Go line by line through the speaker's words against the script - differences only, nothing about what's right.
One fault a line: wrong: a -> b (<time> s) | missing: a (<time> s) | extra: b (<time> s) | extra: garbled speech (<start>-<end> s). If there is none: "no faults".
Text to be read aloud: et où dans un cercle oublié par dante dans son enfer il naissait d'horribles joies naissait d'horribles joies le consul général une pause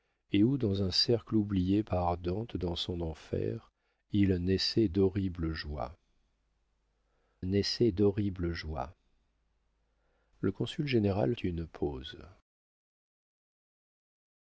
no faults